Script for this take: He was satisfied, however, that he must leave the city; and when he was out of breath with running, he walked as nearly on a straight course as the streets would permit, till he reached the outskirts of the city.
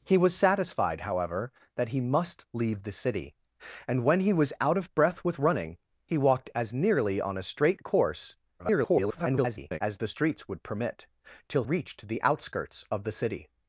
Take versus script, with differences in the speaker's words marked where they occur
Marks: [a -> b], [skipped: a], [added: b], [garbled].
He was satisfied, however, that he must leave the city; and when he was out of breath with running, he walked as nearly on a straight course [garbled] as the streets would permit, till [skipped: he] reached the outskirts of the city.